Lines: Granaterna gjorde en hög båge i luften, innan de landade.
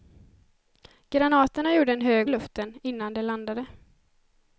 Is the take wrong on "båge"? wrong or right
wrong